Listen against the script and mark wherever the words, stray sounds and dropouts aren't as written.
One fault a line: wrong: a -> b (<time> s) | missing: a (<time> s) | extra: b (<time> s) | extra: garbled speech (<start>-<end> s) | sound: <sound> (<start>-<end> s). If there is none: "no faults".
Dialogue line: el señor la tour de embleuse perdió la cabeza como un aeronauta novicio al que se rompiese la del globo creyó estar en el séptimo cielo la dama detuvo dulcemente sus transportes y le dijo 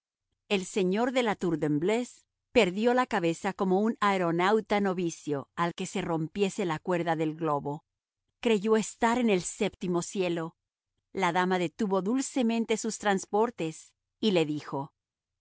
extra: de (1.1 s)
extra: cuerda (6.8 s)